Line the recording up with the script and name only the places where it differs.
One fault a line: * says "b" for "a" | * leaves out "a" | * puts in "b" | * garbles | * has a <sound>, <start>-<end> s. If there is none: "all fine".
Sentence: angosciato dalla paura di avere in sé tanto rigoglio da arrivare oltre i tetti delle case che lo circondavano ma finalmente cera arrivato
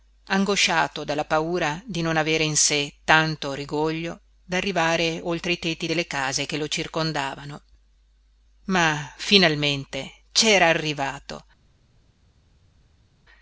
* puts in "non"